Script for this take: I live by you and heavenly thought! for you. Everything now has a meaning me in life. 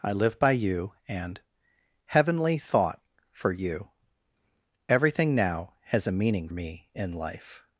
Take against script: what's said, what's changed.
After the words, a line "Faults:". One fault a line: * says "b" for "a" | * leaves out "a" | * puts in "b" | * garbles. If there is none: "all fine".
I live by you and heavenly thought! for you. Everything now has a meaning me in life.
Faults:
all fine